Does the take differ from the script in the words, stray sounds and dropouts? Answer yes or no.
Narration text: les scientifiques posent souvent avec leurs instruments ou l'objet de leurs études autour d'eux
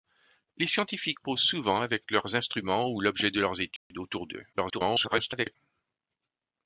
yes